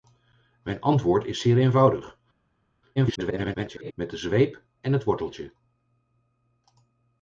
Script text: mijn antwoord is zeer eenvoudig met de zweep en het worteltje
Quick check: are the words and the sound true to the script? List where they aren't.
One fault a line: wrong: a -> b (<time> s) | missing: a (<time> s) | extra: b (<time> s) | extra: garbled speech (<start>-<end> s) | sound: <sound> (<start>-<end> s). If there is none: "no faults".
extra: garbled speech (3.0-3.9 s)